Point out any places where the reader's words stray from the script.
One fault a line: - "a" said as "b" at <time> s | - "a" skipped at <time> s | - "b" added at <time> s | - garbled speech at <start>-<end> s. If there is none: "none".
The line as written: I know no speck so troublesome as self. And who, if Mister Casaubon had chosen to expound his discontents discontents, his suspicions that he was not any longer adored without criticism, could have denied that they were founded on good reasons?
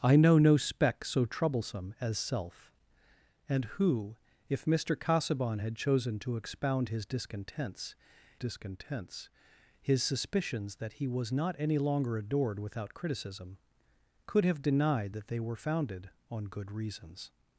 none